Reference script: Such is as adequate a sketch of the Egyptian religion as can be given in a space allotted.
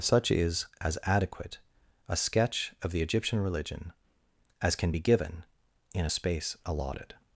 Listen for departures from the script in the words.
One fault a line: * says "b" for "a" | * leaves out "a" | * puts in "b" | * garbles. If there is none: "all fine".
all fine